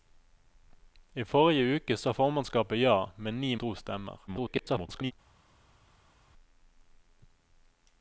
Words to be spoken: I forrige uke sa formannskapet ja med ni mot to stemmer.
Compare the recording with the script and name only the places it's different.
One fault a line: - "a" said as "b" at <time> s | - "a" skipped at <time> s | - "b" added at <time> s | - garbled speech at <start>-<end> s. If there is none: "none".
- "mot" skipped at 3.6 s
- garbled speech at 4.3-5.1 s